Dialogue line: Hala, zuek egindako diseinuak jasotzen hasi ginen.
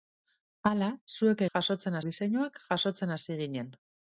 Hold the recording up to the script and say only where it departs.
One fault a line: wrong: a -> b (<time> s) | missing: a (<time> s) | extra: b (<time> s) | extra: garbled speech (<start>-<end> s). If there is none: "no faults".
wrong: egindako -> jasotzen (1.5 s)